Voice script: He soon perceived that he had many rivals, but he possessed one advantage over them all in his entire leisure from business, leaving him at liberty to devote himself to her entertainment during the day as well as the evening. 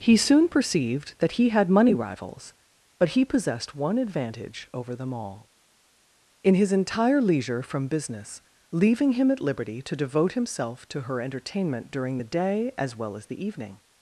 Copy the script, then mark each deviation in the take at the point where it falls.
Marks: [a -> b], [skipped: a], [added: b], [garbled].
He soon perceived that he had [many -> money] rivals, but he possessed one advantage over them all in his entire leisure from business, leaving him at liberty to devote himself to her entertainment during the day as well as the evening.